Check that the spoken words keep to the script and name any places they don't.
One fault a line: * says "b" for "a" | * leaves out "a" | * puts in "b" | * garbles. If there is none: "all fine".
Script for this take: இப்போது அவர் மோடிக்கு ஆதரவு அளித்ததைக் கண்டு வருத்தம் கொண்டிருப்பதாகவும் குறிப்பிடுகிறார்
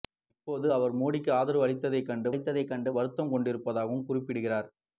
* puts in "அளித்ததைக் கண்டு"